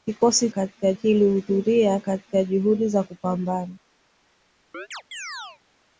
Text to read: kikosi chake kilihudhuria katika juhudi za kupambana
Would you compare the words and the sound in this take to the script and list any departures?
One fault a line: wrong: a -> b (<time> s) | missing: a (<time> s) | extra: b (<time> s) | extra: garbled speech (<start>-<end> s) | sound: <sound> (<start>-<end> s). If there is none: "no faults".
wrong: chake -> katika (0.5 s)
sound: chirp (4.7-5.6 s)